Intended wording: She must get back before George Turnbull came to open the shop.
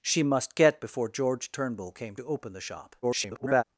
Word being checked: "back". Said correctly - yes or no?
no